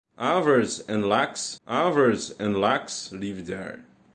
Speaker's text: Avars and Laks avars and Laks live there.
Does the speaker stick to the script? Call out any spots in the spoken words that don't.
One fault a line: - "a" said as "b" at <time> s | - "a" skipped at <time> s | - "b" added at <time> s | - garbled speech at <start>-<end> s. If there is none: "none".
none